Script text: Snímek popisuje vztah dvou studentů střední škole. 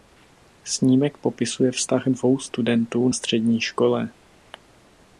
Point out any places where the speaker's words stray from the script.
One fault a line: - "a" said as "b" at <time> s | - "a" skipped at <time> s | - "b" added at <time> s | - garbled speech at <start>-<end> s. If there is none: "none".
none